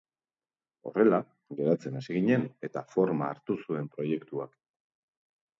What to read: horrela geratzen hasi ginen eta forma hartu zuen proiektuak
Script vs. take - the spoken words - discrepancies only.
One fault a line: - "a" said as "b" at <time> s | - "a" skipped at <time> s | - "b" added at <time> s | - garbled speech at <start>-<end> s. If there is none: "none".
none